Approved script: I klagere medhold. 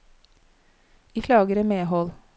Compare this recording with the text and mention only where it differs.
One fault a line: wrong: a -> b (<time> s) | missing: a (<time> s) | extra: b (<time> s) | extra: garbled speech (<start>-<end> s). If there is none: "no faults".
no faults